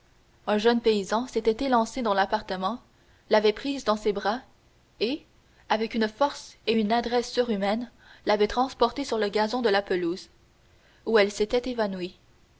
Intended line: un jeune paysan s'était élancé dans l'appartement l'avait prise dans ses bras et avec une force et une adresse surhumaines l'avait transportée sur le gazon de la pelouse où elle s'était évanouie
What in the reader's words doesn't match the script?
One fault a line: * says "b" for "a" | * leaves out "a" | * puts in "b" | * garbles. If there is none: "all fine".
all fine